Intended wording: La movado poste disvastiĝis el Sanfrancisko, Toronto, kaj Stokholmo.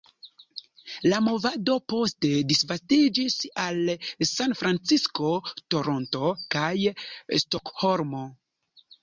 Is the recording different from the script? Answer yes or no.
yes